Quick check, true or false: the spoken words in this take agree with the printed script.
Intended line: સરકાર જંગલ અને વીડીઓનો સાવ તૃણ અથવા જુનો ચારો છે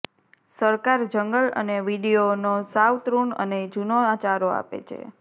false